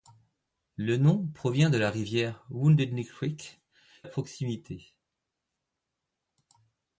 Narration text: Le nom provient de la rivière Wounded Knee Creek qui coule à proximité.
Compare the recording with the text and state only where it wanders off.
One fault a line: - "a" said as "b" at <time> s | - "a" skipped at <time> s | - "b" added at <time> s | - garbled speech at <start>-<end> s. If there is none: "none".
- "qui coule" skipped at 3.6 s